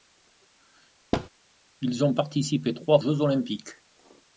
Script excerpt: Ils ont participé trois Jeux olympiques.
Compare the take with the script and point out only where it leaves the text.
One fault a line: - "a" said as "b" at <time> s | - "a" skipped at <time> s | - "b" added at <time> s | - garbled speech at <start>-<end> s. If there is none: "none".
none